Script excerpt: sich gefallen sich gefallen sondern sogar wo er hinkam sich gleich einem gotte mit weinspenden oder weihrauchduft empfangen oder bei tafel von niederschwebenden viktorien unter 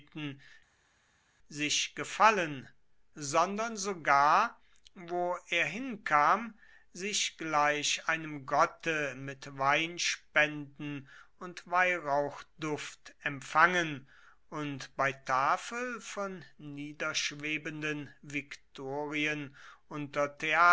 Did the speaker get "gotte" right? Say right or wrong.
right